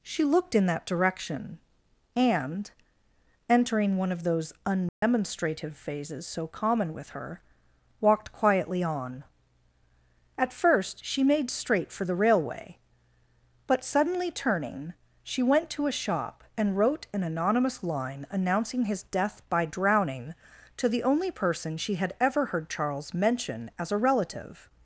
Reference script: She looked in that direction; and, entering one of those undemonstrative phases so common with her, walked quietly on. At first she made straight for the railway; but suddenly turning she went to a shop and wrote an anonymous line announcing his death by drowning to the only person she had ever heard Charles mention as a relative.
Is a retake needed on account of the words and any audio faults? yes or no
yes